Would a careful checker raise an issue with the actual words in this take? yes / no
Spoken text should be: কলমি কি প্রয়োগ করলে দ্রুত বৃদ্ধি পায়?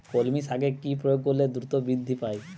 yes